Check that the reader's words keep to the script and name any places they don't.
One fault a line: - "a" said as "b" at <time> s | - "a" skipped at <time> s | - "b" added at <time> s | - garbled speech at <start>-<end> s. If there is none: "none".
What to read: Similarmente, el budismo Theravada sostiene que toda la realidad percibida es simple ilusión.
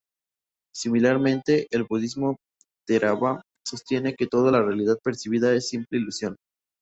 none